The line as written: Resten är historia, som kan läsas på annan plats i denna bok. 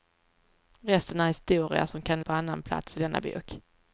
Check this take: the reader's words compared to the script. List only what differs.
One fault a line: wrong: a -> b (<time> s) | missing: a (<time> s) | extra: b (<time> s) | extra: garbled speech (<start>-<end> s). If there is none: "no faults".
missing: läsas (2.2 s)